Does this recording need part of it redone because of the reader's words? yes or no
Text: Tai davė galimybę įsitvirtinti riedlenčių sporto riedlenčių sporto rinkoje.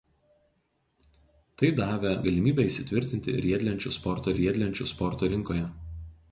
no